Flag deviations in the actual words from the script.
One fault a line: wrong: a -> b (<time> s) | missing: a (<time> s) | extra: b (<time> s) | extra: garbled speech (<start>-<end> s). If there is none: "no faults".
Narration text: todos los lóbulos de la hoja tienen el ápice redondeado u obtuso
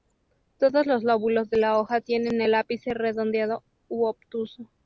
no faults